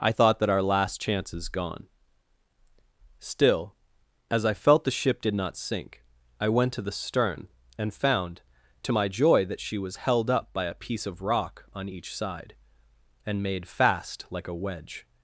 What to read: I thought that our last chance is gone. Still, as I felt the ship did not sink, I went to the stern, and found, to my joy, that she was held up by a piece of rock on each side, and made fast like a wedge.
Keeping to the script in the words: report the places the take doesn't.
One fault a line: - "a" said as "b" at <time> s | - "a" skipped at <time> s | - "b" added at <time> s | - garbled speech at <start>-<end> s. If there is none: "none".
none